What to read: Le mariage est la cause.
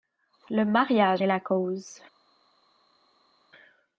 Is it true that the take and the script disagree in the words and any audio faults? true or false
false